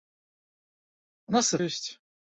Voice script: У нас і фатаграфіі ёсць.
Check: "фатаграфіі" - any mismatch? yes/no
yes